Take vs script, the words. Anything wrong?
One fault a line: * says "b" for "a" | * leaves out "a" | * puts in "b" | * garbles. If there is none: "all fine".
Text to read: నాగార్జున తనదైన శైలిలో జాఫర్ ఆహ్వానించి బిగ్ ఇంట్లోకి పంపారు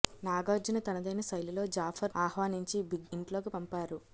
all fine